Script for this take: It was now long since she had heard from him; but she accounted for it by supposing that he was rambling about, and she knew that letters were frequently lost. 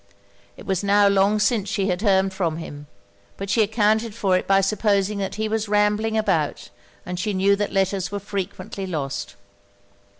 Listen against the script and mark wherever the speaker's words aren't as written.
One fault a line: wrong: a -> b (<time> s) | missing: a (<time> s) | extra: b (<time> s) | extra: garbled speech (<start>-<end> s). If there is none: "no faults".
no faults